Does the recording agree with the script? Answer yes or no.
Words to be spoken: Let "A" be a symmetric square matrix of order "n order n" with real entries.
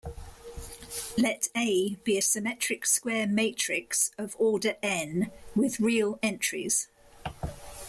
no